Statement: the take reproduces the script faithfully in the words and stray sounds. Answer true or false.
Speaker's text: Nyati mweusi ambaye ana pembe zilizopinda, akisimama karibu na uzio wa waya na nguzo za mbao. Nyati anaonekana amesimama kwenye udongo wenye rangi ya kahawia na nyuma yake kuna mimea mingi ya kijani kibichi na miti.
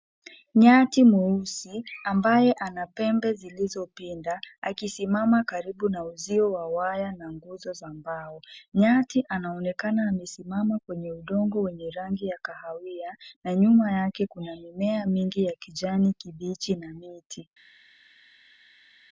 true